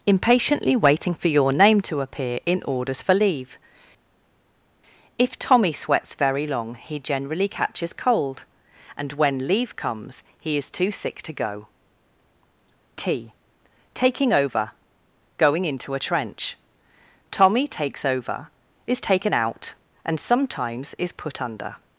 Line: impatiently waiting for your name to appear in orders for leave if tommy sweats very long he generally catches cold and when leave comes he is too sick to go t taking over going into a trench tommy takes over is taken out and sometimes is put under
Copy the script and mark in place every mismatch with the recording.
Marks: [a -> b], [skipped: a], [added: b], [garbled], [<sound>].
impatiently waiting for your name to appear in orders for leave if tommy sweats very long he generally catches cold and when leave comes he is too sick to go t taking over going into a trench tommy takes over is taken out and sometimes is put under